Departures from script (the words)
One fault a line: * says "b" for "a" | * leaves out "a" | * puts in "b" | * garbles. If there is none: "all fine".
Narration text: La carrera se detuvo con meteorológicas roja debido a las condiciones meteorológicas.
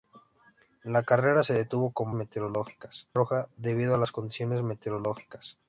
all fine